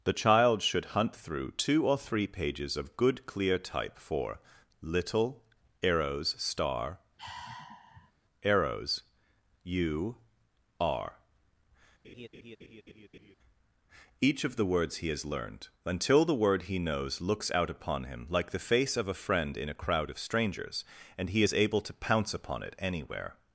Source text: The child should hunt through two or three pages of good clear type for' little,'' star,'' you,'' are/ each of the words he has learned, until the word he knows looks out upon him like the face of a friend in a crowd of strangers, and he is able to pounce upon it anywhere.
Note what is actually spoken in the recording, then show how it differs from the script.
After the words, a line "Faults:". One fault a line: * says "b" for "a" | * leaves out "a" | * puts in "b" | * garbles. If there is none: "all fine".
The child should hunt through two or three pages of good clear type for' little,'' arrows star,'' arrows you,'' are/ each of the words he has learned, until the word he knows looks out upon him like the face of a friend in a crowd of strangers, and he is able to pounce upon it anywhere.
Faults:
* puts in "arrows"
* puts in "arrows"